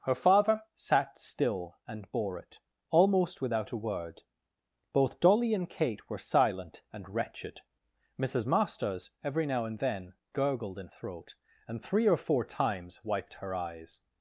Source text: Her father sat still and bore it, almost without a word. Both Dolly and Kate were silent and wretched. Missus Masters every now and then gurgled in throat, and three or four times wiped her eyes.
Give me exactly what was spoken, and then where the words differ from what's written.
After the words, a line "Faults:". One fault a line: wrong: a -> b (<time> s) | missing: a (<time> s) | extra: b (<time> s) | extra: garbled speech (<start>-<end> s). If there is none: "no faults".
Her father sat still and bore it, almost without a word. Both Dolly and Kate were silent and wretched. Missus Masters every now and then gurgled in throat, and three or four times wiped her eyes.
Faults:
no faults